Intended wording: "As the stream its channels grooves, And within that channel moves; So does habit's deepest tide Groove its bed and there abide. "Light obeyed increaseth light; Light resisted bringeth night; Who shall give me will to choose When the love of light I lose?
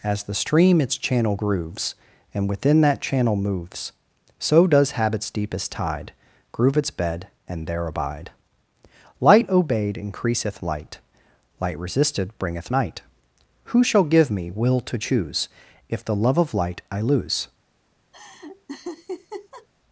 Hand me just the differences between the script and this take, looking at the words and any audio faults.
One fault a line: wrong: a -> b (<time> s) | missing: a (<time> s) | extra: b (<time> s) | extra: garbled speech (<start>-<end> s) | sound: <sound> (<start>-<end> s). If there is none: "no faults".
wrong: channels -> channel (1.0 s)
wrong: When -> If (15.9 s)
sound: laugh (18.1-19.7 s)